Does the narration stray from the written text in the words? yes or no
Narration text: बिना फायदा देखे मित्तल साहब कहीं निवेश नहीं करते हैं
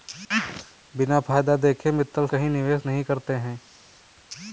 yes